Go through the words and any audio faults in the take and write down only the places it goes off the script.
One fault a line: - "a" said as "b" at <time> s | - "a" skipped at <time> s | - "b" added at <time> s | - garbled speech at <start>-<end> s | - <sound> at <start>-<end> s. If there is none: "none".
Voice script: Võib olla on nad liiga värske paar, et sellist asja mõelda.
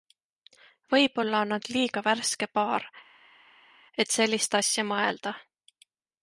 none